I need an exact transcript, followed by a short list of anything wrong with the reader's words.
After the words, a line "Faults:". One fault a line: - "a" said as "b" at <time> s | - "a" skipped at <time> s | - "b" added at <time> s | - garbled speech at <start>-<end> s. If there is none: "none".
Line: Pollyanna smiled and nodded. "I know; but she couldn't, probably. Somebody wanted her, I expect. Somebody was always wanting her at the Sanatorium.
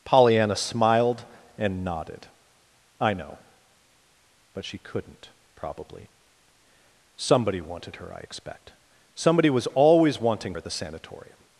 Pollyanna smiled and nodded. "I know; but she couldn't, probably. Somebody wanted her, I expect. Somebody was always wanting at the Sanatorium.
Faults:
- "her" skipped at 10.6 s